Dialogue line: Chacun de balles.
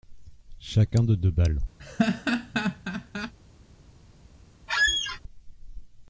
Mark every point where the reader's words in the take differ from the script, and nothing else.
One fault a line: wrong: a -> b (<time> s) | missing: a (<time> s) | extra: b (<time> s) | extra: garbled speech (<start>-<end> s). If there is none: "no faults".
extra: deux (1.1 s)